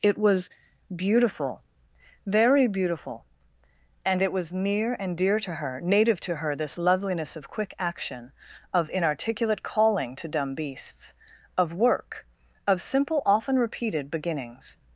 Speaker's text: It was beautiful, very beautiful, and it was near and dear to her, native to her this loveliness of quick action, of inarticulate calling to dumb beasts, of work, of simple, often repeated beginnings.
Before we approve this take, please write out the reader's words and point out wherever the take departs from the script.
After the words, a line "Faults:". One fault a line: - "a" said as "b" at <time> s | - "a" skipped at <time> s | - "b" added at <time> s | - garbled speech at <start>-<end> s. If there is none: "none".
It was beautiful, very beautiful, and it was near and dear to her, native to her this loveliness of quick action, of inarticulate calling to dumb beasts, of work, of simple, often repeated beginnings.
Faults:
none